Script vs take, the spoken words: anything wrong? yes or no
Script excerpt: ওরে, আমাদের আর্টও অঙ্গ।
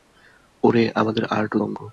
no